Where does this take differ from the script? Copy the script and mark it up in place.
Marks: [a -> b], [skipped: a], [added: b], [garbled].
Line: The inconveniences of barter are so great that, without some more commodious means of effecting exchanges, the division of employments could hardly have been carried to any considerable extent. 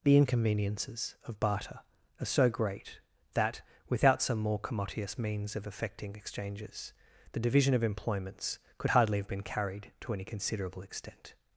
The inconveniences of barter are so great that, without some more commodious means of effecting exchanges, the division of employments could hardly have been carried to any considerable extent.